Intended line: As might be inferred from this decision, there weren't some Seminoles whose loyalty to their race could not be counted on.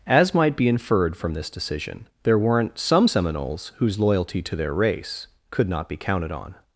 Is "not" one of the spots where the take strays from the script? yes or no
no